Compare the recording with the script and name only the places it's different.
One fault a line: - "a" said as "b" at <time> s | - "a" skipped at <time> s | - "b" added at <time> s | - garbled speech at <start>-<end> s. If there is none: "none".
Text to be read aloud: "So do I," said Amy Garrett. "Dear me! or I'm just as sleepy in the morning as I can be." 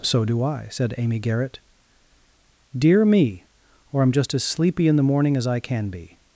none